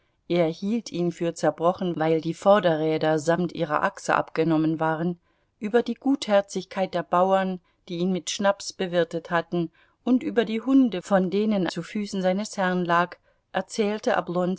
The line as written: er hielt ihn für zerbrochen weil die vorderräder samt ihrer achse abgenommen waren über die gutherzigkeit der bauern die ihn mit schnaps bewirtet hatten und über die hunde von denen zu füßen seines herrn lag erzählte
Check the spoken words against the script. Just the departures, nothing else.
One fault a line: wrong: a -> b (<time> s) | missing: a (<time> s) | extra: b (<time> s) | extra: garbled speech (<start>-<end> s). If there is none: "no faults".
no faults